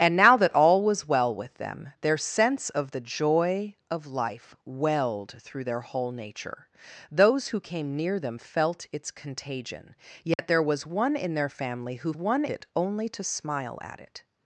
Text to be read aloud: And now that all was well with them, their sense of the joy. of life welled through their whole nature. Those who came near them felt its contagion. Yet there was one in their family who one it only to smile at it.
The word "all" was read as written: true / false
true